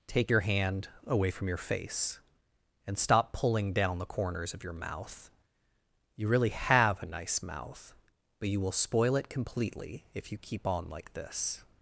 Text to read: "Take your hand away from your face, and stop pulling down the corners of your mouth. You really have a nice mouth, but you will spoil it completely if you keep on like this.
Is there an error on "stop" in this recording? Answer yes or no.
no